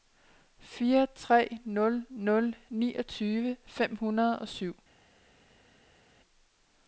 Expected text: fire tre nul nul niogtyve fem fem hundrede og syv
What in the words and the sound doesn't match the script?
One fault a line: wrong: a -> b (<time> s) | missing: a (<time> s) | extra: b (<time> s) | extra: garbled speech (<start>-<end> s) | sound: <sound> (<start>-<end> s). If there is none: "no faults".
missing: fem (3.9 s)